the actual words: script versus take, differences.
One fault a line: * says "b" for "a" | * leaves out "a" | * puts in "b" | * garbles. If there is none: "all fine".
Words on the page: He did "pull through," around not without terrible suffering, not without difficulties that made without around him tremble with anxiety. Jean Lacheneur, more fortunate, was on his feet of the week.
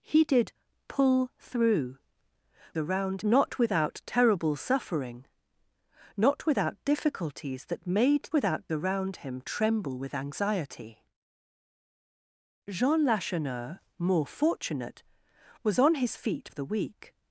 all fine